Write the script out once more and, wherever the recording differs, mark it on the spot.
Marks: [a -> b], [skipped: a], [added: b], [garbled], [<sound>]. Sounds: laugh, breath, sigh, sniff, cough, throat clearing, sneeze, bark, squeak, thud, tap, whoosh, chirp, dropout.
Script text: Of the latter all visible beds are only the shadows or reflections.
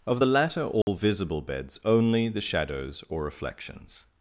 Of the latter all [dropout] visible beds [skipped: are] only the shadows or reflections.